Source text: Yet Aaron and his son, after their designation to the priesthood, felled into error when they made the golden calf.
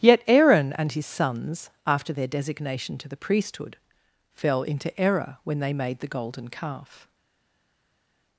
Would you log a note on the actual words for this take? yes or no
yes